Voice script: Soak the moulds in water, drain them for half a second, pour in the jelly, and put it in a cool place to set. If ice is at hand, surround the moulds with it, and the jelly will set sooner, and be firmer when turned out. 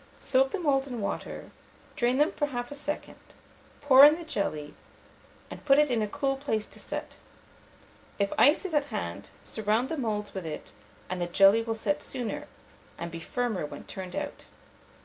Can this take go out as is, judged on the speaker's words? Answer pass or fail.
pass